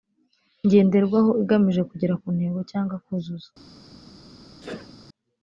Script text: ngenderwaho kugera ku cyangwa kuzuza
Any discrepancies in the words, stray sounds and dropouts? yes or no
yes